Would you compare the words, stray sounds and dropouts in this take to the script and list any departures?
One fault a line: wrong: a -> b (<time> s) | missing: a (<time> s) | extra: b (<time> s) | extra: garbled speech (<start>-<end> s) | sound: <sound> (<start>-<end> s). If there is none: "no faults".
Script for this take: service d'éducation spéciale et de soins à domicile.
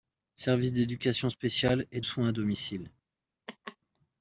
missing: de (2.0 s)
sound: laugh (3.5-3.8 s)